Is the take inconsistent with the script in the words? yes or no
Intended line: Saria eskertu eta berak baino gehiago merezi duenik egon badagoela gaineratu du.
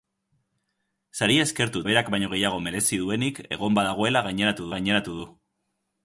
yes